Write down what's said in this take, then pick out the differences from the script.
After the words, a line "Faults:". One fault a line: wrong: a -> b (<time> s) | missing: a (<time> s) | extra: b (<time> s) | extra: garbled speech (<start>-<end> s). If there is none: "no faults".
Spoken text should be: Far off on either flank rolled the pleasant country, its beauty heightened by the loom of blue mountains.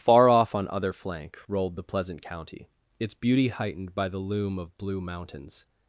Far off on other flank rolled the pleasant county, its beauty heightened by the loom of blue mountains.
Faults:
wrong: either -> other (0.7 s)
wrong: country -> county (2.2 s)